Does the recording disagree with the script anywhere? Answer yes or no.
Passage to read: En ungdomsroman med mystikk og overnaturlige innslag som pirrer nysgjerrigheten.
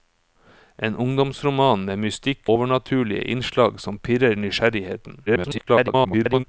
yes